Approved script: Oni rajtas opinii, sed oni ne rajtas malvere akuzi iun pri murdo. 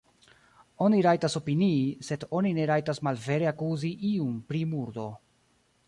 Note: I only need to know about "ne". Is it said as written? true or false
true